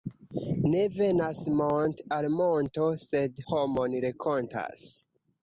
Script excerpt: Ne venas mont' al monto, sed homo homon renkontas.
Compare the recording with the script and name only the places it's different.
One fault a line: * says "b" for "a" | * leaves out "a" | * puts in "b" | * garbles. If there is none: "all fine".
* leaves out "homo"